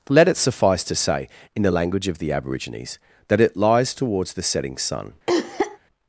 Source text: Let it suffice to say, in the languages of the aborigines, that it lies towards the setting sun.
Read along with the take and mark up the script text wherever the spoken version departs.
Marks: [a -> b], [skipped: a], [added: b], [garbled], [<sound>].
Let it suffice to say, in the [languages -> language] of the aborigines, that it lies towards the setting sun. [cough]